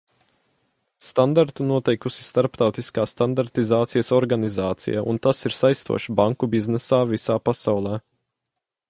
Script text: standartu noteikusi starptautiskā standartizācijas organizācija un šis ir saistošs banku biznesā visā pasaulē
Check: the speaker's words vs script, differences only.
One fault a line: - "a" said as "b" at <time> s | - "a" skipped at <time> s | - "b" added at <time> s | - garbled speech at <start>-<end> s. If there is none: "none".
- "šis" said as "tas" at 5.3 s